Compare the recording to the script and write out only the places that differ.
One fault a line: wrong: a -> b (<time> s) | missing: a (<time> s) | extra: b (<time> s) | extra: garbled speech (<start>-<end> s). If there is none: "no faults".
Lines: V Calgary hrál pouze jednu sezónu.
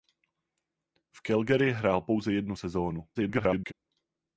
extra: garbled speech (3.1-3.7 s)